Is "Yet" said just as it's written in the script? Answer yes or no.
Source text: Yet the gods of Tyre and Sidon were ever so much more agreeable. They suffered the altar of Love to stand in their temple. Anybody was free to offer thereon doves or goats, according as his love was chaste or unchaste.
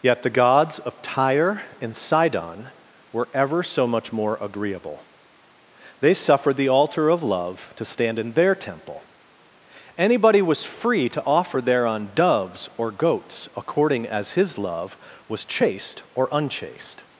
yes